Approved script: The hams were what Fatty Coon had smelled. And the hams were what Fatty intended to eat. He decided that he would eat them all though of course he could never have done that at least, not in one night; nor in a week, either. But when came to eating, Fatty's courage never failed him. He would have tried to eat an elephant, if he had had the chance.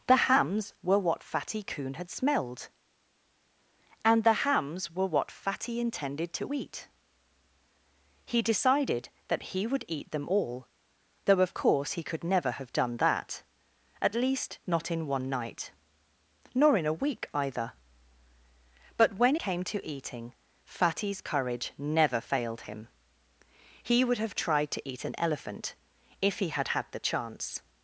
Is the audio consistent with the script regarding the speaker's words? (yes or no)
yes